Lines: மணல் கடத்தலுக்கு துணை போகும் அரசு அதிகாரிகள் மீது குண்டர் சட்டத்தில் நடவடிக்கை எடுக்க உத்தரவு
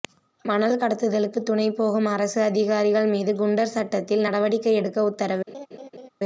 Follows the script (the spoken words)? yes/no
yes